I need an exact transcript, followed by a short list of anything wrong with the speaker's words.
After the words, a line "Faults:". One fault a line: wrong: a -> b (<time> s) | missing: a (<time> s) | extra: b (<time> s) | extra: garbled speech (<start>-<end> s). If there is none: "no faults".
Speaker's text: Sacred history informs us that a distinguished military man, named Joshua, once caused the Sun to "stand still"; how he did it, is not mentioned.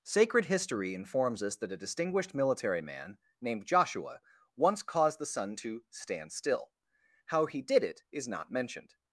Sacred history informs us that a distinguished military man, named Joshua, once caused the Sun to "stand still"; how he did it, is not mentioned.
Faults:
no faults